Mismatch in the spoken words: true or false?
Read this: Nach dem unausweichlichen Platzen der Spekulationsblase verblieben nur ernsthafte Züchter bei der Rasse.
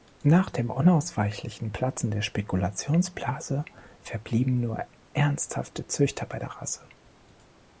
false